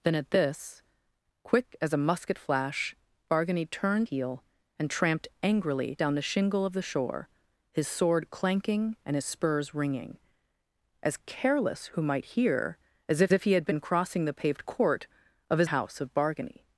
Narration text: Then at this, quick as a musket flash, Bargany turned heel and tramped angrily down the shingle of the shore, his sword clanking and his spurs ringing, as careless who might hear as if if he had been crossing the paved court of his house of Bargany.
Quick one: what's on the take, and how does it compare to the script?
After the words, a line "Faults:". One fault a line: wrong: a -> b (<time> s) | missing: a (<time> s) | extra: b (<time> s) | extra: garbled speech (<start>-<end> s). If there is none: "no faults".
Then at this, quick as a musket flash, Bargany turned heel and tramped angrily down the shingle of the shore, his sword clanking and his spurs ringing, as careless who might hear as if if he had been crossing the paved court of his house of Bargany.
Faults:
no faults